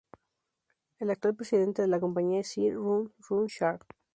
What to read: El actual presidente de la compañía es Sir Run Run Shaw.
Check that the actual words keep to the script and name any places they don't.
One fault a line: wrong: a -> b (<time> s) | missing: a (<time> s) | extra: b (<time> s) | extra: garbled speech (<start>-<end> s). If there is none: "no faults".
no faults